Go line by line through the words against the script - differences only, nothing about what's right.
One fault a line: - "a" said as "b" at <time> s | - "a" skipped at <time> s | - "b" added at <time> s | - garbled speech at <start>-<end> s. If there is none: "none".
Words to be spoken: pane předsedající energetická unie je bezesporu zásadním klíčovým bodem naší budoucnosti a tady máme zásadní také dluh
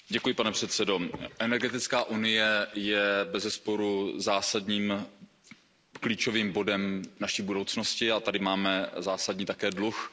none